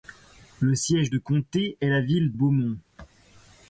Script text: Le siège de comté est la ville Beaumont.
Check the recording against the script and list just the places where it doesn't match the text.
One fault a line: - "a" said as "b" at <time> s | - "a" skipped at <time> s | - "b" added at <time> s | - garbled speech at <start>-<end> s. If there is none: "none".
none